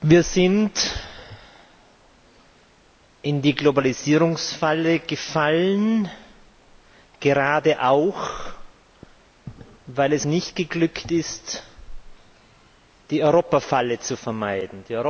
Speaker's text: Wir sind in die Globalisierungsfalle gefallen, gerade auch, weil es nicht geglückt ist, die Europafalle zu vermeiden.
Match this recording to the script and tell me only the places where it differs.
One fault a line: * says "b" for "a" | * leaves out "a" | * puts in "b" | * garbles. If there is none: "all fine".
all fine